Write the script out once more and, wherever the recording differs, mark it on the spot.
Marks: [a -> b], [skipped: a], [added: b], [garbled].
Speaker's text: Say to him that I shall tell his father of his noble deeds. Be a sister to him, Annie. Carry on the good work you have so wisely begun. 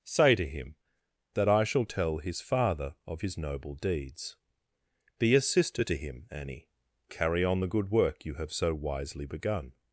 Say to him that I shall tell his father of his noble deeds. Be a sister to him, Annie. Carry on the good work you have so wisely begun.